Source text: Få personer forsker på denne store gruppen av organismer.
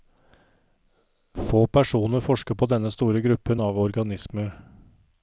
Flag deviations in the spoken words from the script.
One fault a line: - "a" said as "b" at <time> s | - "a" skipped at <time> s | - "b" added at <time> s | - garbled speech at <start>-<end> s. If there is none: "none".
none